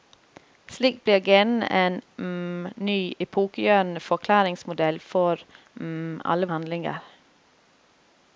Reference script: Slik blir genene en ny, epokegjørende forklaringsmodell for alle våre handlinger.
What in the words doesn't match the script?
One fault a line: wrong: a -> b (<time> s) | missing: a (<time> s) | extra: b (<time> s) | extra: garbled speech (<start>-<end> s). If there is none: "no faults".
missing: våre (6.5 s)